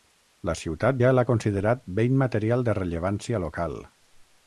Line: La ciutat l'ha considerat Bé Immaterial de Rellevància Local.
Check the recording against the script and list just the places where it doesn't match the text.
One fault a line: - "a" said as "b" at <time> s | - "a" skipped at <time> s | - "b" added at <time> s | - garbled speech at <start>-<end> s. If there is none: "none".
- "ja" added at 1.0 s